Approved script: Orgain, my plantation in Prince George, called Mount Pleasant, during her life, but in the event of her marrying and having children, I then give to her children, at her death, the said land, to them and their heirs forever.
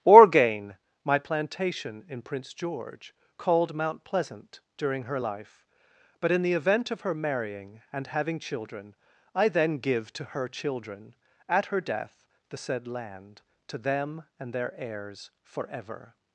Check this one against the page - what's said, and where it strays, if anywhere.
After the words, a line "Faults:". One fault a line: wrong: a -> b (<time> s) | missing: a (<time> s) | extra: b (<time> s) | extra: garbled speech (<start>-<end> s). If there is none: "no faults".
Orgain, my plantation in Prince George, called Mount Pleasant, during her life, but in the event of her marrying and having children, I then give to her children, at her death, the said land, to them and their heirs forever.
Faults:
no faults